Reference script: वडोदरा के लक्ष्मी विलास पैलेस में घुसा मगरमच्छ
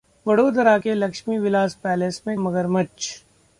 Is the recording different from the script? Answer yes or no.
yes